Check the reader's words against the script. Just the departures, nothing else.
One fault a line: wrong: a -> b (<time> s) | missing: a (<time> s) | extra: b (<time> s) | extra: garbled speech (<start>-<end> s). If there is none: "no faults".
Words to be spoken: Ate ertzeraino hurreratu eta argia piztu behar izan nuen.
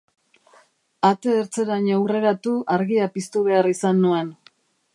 missing: eta (2.5 s)